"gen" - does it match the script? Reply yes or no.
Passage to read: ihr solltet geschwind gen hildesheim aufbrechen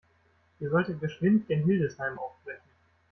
yes